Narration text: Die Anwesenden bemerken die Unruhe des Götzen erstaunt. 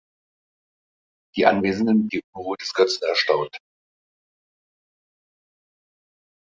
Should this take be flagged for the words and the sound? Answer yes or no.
yes